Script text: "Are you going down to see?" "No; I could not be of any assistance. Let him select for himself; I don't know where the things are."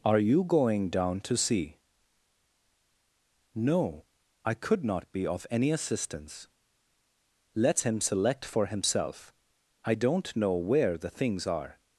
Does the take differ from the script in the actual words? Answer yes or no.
no